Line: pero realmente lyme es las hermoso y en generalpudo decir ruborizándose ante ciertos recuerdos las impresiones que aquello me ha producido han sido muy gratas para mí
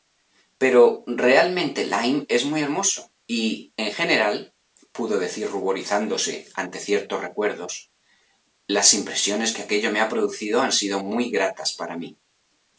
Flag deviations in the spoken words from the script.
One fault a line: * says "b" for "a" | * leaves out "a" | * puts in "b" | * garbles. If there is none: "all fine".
* says "muy" for "las"